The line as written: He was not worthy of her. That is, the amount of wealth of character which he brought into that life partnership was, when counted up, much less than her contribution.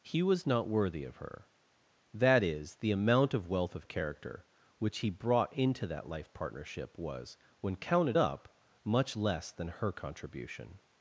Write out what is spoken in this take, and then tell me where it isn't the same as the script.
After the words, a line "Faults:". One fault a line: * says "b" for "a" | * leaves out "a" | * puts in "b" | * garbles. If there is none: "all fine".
He was not worthy of her. That is, the amount of wealth of character which he brought into that life partnership was, when counted up, much less than her contribution.
Faults:
all fine